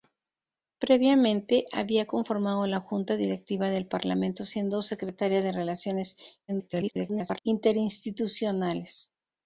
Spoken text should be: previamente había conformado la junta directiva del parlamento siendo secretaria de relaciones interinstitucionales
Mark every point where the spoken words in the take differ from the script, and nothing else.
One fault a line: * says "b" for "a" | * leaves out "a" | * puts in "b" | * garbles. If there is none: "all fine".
* garbles